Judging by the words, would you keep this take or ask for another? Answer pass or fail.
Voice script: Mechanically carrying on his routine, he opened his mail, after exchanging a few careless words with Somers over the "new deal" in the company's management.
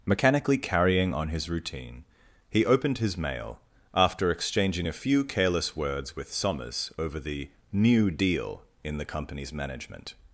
pass